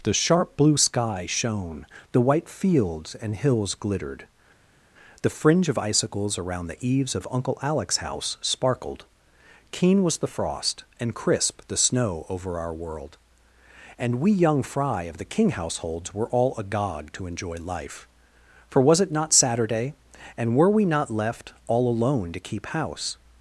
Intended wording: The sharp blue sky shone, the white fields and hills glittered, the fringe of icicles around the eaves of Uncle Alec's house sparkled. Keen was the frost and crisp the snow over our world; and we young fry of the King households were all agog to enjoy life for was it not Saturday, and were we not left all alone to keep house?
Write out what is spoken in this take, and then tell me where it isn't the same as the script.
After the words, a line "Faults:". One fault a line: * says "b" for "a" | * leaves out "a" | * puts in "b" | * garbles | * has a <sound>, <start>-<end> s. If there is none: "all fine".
The sharp blue sky shone, the white fields and hills glittered, the fringe of icicles around the eaves of Uncle Alec's house sparkled. Keen was the frost and crisp the snow over our world; and we young fry of the King households were all agog to enjoy life for was it not Saturday, and were we not left all alone to keep house?
Faults:
all fine